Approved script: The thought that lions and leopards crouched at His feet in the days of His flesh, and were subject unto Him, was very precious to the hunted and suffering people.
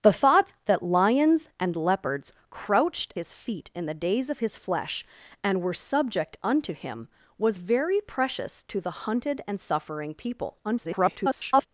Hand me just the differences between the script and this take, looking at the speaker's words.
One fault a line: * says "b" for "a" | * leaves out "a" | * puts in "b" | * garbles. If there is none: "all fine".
* leaves out "at"
* garbles